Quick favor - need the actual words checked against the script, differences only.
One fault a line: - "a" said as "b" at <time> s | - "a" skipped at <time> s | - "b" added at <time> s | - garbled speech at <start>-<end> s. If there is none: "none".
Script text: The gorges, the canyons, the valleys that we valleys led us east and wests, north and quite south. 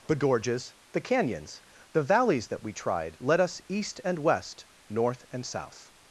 - "valleys" said as "tried" at 2.7 s
- "wests" said as "west" at 4.2 s
- "quite" skipped at 5.5 s